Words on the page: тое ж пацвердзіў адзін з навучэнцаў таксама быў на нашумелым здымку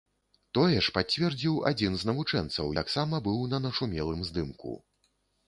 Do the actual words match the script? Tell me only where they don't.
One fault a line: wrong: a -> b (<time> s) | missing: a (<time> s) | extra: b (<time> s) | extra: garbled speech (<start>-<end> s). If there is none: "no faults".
no faults